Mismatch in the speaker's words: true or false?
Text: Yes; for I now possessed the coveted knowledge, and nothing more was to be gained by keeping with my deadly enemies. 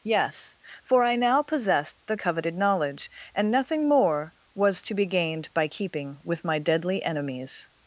false